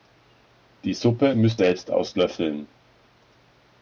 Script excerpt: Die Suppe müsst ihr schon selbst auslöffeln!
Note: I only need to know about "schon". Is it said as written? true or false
false